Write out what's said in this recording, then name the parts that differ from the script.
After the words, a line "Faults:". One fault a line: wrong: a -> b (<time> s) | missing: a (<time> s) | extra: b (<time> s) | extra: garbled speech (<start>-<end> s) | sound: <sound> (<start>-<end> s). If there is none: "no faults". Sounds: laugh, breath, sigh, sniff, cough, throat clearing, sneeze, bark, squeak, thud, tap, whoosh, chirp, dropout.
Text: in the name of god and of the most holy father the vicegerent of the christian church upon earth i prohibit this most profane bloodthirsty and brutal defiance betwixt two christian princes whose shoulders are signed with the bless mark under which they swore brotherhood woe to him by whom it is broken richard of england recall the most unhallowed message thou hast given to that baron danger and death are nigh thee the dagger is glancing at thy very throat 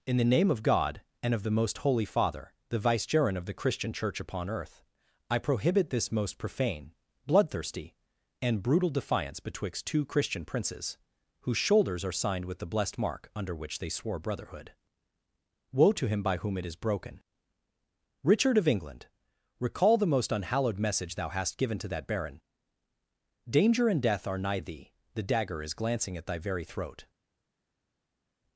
in the name of god and of the most holy father the vicegerent of the christian church upon earth i prohibit this most profane bloodthirsty and brutal defiance betwixt two christian princes whose shoulders are signed with the blessed mark under which they swore brotherhood woe to him by whom it is broken richard of england recall the most unhallowed message thou hast given to that baron danger and death are nigh thee the dagger is glancing at thy very throat
Faults:
wrong: bless -> blessed (12.7 s)